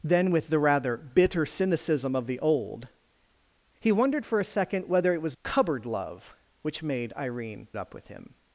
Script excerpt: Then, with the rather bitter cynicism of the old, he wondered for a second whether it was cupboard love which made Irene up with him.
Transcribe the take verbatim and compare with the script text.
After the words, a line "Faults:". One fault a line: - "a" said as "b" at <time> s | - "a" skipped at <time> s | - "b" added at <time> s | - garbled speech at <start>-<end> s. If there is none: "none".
Then, with the rather bitter cynicism of the old, he wondered for a second whether it was cupboard love which made Irene up with him.
Faults:
none